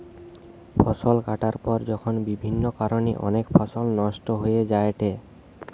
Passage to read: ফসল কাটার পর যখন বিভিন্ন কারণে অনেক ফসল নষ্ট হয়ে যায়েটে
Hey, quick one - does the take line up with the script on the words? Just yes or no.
yes